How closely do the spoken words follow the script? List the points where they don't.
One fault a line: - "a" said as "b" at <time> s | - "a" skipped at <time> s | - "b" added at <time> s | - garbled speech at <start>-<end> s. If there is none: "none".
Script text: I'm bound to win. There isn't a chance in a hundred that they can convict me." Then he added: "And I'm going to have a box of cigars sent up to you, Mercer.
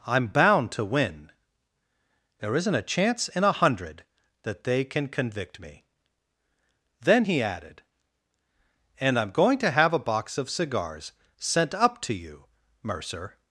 none